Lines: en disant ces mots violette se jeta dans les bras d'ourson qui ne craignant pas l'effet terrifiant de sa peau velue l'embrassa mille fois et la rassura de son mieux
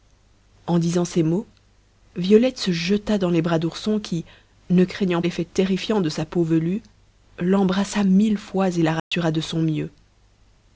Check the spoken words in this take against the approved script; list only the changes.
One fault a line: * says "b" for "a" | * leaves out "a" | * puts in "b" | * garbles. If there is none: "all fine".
* leaves out "pas"